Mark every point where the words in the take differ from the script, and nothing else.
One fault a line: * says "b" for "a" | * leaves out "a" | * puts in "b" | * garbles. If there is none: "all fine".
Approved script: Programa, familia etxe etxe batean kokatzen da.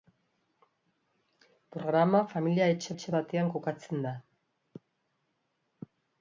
all fine